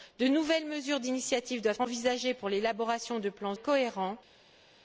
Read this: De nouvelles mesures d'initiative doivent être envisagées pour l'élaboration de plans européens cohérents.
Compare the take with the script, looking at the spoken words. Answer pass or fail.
fail